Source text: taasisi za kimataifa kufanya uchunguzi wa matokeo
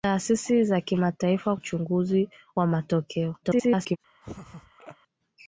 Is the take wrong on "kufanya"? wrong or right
wrong